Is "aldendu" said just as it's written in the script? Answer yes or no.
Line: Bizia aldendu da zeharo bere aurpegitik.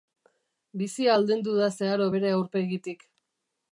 yes